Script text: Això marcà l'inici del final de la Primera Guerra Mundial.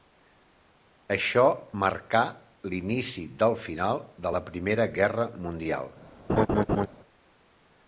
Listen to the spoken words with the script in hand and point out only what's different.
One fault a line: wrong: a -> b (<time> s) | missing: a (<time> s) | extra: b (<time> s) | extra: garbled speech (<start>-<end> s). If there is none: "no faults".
no faults